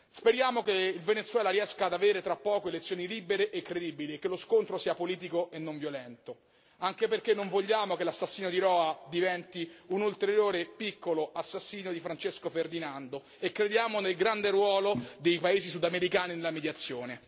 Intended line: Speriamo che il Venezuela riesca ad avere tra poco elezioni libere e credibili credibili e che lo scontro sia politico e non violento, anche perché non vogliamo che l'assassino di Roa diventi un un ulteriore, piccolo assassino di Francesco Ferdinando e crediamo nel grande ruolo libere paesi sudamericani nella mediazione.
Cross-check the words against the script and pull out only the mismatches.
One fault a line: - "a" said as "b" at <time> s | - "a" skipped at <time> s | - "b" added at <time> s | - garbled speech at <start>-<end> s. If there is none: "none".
- "credibili" skipped at 4.2 s
- "un" skipped at 10.0 s
- "libere" said as "dei" at 15.2 s